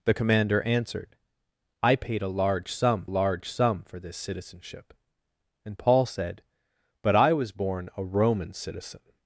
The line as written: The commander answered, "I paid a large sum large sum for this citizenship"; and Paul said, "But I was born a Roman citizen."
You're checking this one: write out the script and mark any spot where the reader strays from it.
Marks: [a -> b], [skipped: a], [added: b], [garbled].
The commander answered, "I paid a large sum large sum for this citizenship"; and Paul said, "But I was born a Roman citizen."